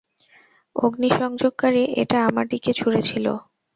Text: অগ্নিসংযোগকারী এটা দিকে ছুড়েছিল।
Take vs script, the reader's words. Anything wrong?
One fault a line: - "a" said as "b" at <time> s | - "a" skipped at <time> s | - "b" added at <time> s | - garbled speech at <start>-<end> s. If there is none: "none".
- "আমার" added at 2.3 s